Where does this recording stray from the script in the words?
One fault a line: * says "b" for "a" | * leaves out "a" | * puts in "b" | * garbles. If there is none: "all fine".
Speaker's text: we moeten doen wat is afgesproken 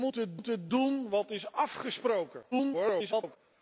* puts in "moeten"
* garbles